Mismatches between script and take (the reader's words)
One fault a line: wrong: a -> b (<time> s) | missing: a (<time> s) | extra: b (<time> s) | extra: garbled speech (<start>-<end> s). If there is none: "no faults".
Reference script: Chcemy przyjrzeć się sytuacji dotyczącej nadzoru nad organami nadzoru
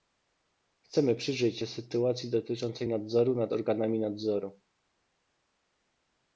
no faults